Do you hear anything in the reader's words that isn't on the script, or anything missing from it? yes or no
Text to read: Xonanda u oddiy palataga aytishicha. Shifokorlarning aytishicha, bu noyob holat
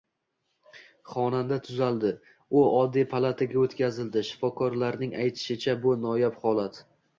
yes